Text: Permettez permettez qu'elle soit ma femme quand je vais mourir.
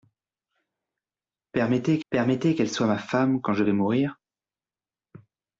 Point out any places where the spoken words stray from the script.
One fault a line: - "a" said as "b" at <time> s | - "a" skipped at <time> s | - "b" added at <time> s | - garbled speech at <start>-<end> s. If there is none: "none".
none